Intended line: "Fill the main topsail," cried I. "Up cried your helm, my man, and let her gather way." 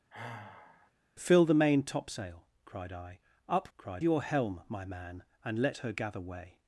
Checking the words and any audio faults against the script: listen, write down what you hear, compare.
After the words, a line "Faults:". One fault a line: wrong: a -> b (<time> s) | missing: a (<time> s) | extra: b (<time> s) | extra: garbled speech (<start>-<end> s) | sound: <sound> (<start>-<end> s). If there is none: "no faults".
"Fill the main topsail," cried I. "Up cried your helm, my man, and let her gather way."
Faults:
sound: sigh (0.1-0.9 s)